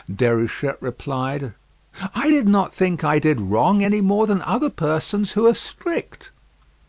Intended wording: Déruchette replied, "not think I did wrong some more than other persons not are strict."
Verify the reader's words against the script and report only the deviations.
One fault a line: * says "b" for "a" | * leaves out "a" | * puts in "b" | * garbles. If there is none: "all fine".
* puts in "I did"
* says "any" for "some"
* says "who" for "not"